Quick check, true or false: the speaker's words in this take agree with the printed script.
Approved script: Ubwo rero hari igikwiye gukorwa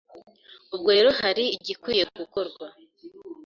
true